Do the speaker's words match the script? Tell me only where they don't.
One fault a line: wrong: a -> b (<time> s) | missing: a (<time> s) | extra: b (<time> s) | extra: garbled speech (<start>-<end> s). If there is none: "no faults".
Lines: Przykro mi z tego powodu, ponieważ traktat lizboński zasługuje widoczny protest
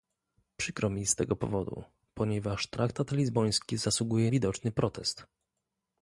no faults